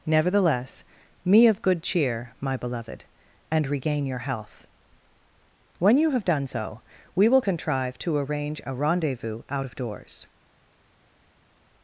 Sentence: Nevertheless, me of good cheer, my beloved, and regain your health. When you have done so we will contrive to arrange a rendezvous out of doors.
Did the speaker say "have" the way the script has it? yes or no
yes